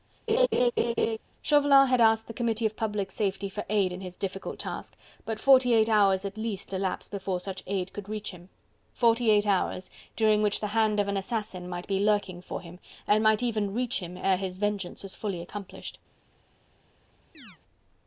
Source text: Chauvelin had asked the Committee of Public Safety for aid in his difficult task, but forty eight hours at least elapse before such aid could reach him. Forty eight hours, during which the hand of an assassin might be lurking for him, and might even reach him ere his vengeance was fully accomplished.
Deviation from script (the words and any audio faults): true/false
true